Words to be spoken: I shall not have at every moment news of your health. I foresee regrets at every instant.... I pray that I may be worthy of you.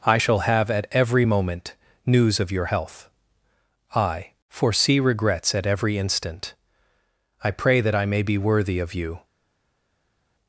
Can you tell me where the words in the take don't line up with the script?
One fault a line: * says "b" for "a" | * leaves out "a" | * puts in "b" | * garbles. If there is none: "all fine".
* leaves out "not"